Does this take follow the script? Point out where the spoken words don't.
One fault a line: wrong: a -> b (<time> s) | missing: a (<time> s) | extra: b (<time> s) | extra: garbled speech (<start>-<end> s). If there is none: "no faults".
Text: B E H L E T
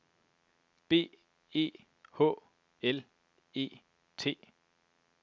no faults